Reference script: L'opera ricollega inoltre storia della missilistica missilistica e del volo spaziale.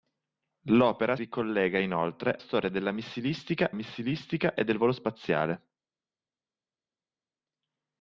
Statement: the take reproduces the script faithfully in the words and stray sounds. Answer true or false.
true